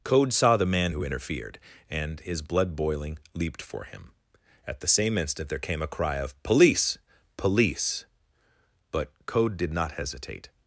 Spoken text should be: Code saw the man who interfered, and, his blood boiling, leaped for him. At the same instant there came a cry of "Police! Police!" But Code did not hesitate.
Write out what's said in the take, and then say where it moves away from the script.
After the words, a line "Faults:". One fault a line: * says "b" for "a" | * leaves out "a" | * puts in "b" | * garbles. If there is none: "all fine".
Code saw the man who interfered, and, his blood boiling, leaped for him. At the same instant there came a cry of "Police! Police!" But Code did not hesitate.
Faults:
all fine